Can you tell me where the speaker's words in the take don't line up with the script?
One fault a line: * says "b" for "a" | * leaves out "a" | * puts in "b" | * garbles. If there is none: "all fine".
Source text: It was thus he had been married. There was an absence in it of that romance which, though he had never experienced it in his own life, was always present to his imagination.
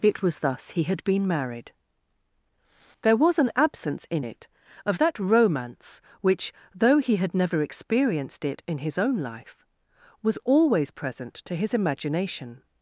all fine